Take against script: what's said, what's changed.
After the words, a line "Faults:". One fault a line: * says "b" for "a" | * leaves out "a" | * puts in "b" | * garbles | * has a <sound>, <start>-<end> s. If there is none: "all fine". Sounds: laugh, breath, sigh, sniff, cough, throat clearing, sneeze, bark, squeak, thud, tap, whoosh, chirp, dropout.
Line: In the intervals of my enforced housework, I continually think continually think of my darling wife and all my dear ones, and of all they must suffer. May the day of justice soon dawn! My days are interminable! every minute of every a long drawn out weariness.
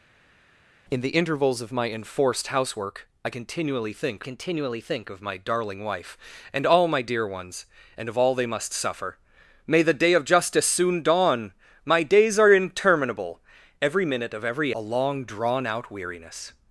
In the intervals of my enforced housework, I continually think continually think of my darling wife and all my dear ones, and of all they must suffer. May the day of justice soon dawn! My days are interminable! every minute of every a long drawn out weariness.
Faults:
all fine